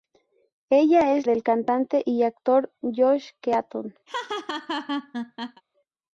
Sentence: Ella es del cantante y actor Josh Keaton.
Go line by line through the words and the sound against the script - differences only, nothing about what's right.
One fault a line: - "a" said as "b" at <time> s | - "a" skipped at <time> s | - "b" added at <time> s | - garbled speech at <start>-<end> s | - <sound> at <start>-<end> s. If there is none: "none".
- laugh at 4.1-5.6 s